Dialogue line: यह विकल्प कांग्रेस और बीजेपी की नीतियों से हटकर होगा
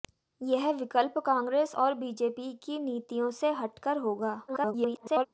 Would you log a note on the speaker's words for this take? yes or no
yes